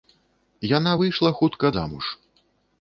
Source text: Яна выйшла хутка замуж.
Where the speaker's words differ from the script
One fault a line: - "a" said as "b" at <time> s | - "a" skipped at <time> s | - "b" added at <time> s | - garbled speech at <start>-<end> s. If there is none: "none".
none